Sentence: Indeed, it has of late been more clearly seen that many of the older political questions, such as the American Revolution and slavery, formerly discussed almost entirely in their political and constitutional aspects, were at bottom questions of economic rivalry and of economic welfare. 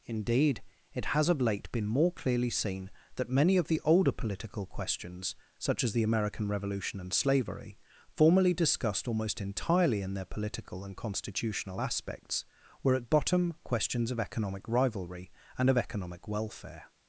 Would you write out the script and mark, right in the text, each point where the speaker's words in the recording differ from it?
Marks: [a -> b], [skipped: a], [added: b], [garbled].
Indeed, it has of late been more clearly seen that many of the older political questions, such as the American Revolution and slavery, formerly discussed almost entirely in their political and constitutional aspects, were at bottom questions of economic rivalry and of economic welfare.